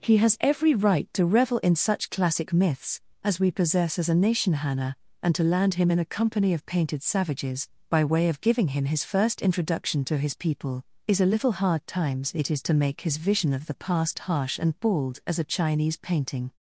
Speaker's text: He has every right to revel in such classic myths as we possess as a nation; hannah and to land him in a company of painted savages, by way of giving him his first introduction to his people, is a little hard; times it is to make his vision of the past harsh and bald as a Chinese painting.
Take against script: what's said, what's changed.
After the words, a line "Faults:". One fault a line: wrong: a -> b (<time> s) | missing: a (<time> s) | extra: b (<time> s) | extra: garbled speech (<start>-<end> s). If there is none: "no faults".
He has every right to revel in such classic myths as we possess as a nation; hannah and to land him in a company of painted savages, by way of giving him his first introduction to his people, is a little hard; times it is to make his vision of the past harsh and bald as a Chinese painting.
Faults:
no faults